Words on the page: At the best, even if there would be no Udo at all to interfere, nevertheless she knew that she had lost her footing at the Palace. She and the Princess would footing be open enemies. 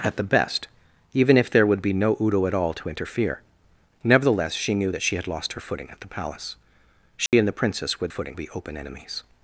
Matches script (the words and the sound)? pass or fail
fail